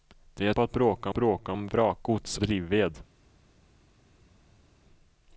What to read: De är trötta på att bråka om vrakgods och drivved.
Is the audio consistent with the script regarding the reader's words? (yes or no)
no